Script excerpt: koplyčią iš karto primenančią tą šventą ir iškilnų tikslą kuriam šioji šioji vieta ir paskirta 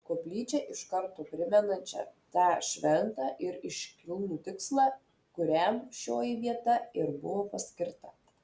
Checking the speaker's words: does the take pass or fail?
fail